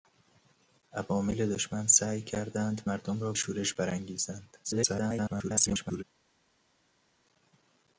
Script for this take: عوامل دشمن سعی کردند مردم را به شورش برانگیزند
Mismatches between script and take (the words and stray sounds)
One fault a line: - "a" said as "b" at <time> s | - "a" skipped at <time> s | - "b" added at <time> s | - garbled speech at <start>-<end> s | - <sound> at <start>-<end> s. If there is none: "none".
- "به" skipped at 3.3 s
- garbled speech at 4.6-6.0 s